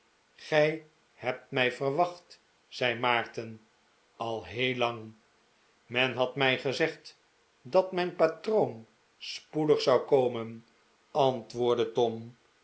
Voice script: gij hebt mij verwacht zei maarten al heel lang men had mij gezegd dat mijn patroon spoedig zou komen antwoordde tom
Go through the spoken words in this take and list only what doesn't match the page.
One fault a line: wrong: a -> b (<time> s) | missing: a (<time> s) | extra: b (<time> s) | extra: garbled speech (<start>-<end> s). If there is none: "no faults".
no faults